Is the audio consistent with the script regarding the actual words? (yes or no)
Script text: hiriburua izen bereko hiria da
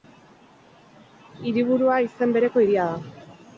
yes